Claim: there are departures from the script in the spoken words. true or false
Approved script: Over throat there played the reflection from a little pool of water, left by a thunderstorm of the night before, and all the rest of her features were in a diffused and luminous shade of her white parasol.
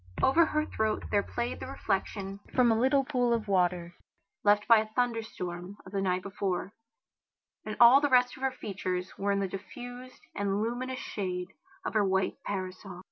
true